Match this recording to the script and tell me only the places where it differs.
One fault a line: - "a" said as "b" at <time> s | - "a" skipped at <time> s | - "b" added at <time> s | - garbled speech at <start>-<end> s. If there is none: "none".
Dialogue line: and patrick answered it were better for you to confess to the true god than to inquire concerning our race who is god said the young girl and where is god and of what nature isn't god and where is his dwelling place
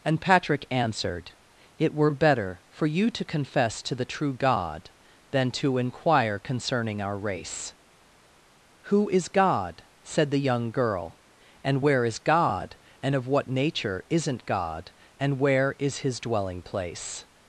none